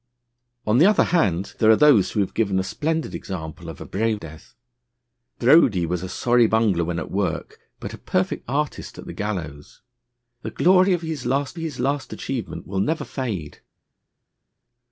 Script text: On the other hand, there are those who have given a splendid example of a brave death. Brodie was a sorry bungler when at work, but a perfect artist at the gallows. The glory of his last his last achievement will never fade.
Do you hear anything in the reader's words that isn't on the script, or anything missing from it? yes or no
no